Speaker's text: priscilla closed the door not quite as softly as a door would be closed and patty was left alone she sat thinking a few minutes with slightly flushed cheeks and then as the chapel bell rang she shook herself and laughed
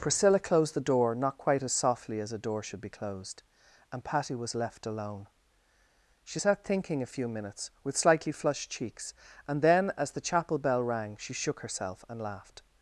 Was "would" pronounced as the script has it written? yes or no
no